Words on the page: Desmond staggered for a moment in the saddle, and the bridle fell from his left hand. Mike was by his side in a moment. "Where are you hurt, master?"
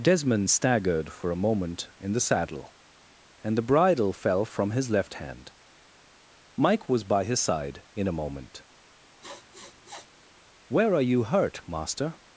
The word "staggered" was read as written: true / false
true